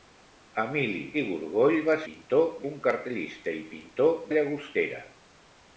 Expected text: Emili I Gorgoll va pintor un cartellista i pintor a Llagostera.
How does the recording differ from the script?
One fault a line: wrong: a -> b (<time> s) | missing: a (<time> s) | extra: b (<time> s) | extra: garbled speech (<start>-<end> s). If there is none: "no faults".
no faults